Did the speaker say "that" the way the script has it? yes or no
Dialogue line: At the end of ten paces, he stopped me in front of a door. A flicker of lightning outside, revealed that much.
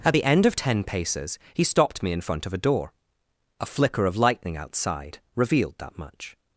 yes